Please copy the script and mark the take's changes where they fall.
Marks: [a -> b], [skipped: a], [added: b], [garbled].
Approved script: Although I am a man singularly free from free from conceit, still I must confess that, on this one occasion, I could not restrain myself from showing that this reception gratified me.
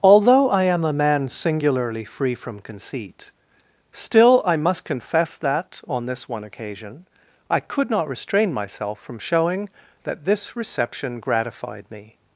Although I am a man singularly free from [skipped: free from] conceit, still I must confess that, on this one occasion, I could not restrain myself from showing that this reception gratified me.